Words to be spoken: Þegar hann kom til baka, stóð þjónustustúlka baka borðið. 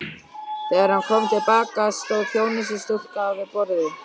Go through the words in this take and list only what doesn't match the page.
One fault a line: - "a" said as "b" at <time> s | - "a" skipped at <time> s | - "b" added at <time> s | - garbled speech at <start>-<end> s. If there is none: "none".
- "baka" said as "við" at 3.4 s